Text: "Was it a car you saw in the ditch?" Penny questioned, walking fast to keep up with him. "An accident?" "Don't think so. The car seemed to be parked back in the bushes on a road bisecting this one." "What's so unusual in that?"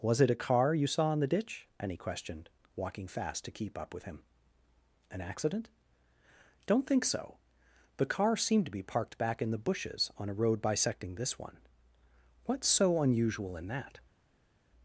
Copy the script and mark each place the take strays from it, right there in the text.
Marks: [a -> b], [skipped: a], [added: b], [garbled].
"Was it a car you saw in the ditch?" [Penny -> Annie] questioned, walking fast to keep up with him. "An accident?" "Don't think so. The car seemed to be parked back in the bushes on a road bisecting this one." "What's so unusual in that?"